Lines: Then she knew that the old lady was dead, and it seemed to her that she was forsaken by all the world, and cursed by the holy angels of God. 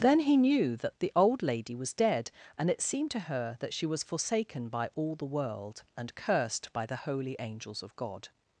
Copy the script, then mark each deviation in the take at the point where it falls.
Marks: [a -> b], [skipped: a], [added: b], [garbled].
Then [she -> he] knew that the old lady was dead, and it seemed to her that she was forsaken by all the world, and cursed by the holy angels of God.